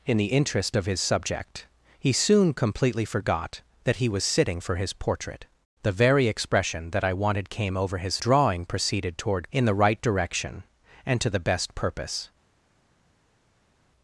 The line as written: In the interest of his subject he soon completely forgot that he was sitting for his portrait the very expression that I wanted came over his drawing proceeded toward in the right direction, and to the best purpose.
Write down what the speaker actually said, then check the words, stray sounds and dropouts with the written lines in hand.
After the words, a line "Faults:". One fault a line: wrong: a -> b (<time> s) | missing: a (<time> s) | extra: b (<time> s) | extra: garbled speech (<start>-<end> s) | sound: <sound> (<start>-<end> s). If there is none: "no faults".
In the interest of his subject he soon completely forgot that he was sitting for his portrait the very expression that I wanted came over his drawing proceeded toward in the right direction, and to the best purpose.
Faults:
no faults